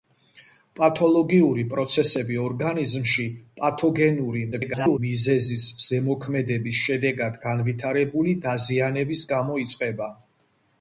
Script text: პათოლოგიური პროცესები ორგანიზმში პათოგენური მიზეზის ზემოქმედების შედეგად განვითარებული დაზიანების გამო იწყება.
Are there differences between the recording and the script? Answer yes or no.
yes